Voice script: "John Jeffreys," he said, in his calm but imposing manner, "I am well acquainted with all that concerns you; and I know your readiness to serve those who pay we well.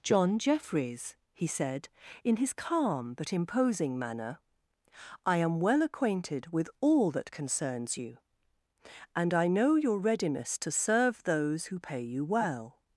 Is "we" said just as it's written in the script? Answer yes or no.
no